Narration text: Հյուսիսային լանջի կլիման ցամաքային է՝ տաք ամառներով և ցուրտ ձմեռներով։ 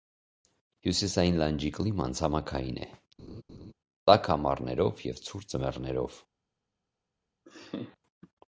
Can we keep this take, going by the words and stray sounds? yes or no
no